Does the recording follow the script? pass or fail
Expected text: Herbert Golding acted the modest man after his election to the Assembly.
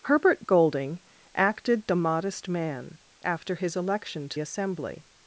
fail